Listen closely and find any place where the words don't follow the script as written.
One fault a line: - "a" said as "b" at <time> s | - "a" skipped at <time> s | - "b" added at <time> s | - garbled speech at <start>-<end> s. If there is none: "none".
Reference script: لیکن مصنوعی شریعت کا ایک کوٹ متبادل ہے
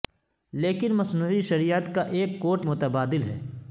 none